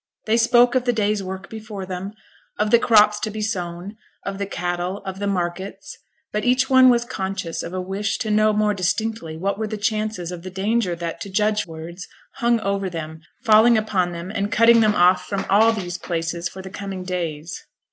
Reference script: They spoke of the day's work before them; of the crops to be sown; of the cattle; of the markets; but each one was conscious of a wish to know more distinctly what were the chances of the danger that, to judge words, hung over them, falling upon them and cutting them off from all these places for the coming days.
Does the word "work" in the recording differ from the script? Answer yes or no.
no